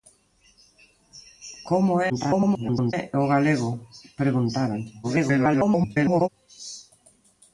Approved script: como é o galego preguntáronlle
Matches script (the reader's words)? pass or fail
fail